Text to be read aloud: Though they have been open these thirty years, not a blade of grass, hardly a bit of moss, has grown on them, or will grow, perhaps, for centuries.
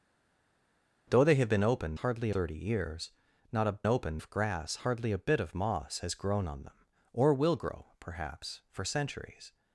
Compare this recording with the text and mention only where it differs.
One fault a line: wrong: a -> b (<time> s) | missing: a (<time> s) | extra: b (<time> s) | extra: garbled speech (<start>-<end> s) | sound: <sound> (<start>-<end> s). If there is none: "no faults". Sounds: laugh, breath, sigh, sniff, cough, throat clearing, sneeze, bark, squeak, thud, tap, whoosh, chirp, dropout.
wrong: these -> hardly (1.9 s)
wrong: blade -> open (3.9 s)